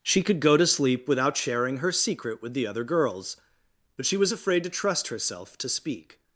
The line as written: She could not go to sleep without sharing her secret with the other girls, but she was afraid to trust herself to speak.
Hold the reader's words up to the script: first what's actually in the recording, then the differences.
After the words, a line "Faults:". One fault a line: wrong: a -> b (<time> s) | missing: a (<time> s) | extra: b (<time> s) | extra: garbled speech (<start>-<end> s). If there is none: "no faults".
She could go to sleep without sharing her secret with the other girls, but she was afraid to trust herself to speak.
Faults:
missing: not (0.4 s)